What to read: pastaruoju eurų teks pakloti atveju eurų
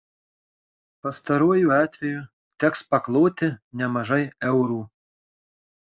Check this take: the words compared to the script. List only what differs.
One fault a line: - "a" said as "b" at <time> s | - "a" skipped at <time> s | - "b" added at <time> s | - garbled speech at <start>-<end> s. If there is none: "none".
- "eurų" said as "atveju" at 1.8 s
- "atveju" said as "nemažai" at 3.8 s